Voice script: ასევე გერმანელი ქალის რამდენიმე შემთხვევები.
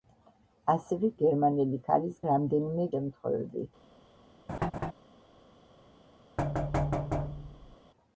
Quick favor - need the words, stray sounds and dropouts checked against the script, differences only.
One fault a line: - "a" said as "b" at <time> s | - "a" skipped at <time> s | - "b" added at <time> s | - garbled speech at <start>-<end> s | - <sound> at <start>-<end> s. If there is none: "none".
- laugh at 4.5-4.9 s
- thud at 6.4-7.8 s